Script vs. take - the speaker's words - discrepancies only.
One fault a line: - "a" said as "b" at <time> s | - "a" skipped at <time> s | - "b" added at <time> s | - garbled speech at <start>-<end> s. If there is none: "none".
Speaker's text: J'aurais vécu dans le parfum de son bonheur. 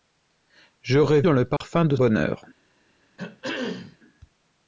- "vécu" skipped at 1.2 s
- "son" skipped at 1.9 s